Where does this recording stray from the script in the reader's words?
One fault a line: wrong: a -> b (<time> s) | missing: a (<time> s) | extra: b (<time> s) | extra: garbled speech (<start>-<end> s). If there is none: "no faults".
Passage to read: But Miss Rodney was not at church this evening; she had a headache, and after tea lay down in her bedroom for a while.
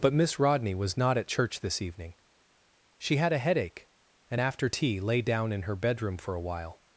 no faults